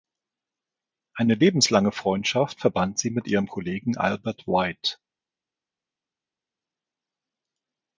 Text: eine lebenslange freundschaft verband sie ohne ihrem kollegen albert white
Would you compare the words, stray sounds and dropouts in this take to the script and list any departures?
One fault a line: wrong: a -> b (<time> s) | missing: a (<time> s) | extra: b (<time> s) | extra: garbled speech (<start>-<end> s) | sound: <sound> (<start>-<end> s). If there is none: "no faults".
wrong: ohne -> mit (3.1 s)